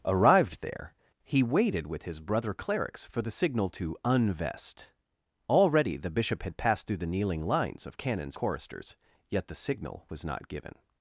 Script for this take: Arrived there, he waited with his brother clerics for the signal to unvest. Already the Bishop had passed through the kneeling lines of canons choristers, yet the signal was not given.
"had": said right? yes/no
yes